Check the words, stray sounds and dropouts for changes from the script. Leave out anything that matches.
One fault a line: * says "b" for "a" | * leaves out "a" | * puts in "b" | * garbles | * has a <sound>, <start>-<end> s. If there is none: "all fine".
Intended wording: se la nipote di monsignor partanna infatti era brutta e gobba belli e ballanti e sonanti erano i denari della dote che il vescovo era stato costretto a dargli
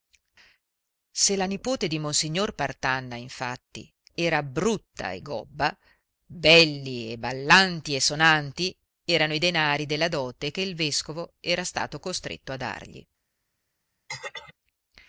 * has a throat clearing, 14.1-14.5 s